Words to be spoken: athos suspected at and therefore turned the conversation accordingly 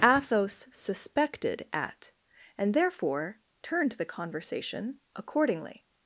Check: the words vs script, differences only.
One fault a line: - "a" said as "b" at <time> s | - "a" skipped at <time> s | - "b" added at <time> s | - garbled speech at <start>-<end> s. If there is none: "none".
none